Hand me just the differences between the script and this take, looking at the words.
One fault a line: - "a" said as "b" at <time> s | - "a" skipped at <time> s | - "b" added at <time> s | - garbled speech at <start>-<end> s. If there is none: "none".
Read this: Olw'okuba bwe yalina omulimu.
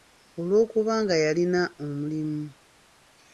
- "bwe" said as "nga" at 1.0 s